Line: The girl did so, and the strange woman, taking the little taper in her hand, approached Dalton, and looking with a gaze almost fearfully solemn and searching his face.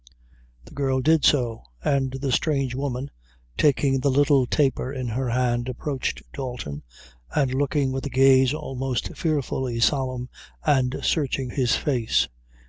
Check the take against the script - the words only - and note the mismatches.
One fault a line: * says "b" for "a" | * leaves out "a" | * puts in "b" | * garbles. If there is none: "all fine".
all fine